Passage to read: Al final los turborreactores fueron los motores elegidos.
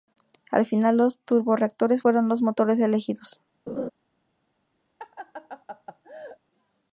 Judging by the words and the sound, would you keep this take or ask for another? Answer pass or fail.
fail